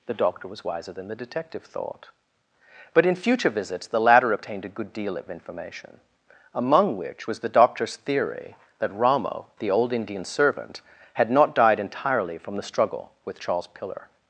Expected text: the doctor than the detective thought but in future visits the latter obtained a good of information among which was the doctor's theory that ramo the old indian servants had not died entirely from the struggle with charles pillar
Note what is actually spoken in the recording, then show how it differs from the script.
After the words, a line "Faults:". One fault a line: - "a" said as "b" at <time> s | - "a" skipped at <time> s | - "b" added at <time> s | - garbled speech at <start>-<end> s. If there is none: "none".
the doctor was wiser than the detective thought but in future visits the latter obtained a good deal of information among which was the doctor's theory that ramo the old indian servant had not died entirely from the struggle with charles pillar
Faults:
- "was wiser" added at 0.5 s
- "deal" added at 4.9 s
- "servants" said as "servant" at 10.2 s